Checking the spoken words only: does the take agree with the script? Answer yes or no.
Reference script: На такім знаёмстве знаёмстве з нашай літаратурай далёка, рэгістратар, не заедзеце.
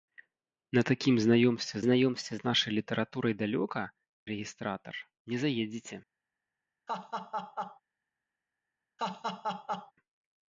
yes